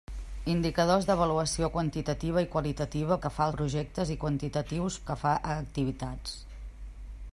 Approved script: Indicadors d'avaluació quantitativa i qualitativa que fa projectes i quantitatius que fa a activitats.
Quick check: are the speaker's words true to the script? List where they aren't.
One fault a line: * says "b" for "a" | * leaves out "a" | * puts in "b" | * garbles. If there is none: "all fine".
all fine